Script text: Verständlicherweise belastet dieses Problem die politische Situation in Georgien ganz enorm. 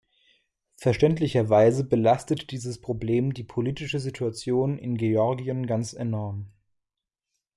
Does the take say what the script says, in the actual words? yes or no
yes